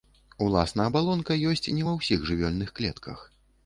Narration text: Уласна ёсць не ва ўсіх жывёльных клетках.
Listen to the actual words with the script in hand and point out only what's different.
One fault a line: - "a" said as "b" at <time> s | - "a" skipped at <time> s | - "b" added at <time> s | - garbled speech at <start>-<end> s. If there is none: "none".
- "абалонка" added at 0.9 s